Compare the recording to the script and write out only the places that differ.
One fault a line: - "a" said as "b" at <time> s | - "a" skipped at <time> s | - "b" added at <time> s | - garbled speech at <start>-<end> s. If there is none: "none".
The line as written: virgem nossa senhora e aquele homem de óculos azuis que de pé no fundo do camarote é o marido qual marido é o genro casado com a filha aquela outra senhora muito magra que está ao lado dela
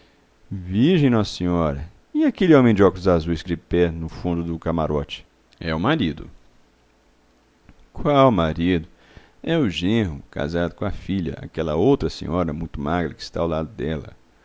none